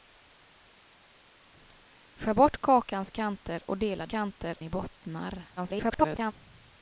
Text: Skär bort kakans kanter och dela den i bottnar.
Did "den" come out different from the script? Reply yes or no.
yes